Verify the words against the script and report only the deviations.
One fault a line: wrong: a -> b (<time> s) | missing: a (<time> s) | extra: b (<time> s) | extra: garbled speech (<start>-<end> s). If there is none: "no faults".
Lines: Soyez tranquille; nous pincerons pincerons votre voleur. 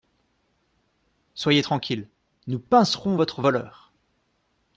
missing: pincerons (3.2 s)